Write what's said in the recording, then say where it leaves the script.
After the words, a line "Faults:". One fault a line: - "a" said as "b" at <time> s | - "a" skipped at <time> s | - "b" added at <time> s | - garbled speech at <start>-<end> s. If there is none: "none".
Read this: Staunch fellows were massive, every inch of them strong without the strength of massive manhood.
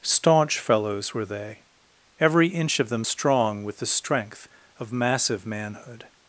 Staunch fellows were they, every inch of them strong with the strength of massive manhood.
Faults:
- "massive" said as "they" at 1.2 s
- "without" said as "with" at 3.6 s